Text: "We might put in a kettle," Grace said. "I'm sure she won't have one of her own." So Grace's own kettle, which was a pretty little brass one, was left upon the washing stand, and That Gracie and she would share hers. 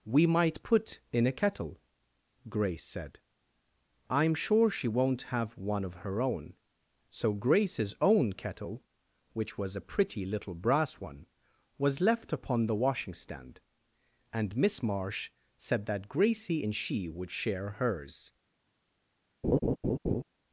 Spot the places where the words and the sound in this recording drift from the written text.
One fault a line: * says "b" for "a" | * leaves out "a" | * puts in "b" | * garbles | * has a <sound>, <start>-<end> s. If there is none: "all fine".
* puts in "Miss Marsh said"
* has a laugh, 19.4-20.2 s